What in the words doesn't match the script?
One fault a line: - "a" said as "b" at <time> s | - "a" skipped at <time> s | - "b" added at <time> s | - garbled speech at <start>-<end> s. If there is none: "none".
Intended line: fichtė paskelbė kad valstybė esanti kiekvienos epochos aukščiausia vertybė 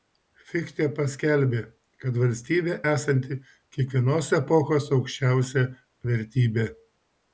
none